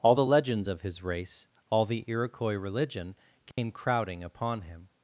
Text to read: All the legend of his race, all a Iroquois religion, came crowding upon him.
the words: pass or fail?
fail